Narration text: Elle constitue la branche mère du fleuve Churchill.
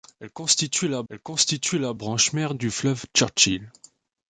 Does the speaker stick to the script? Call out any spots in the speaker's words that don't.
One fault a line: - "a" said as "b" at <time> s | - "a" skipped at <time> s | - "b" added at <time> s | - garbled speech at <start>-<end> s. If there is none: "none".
- "elle constitue la" added at 1.1 s